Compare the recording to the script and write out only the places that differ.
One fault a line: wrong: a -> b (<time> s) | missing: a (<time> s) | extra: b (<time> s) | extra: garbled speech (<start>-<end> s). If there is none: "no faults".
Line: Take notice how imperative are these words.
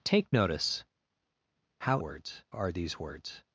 wrong: imperative -> words (2.0 s)